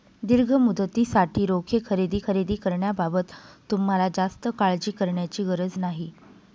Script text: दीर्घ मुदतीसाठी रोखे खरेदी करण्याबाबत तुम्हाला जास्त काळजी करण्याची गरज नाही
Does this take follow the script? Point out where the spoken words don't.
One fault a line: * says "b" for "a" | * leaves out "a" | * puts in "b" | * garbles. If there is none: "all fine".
* puts in "खरेदी"